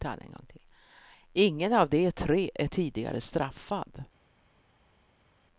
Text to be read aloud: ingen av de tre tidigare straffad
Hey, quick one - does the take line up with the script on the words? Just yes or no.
no